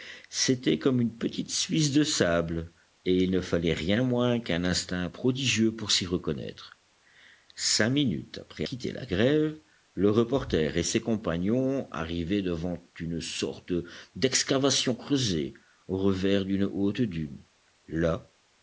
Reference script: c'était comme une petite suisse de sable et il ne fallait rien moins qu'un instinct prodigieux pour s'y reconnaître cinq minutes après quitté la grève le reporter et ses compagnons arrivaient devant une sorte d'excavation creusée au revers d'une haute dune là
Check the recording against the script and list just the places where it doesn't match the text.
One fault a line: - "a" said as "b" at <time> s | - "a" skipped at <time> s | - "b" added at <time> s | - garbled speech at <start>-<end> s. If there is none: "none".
none